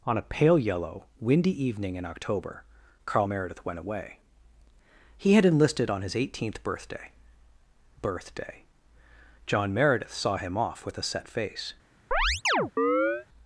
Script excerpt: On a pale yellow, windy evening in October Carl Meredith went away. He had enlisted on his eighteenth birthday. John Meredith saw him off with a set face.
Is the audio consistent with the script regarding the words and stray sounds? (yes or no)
no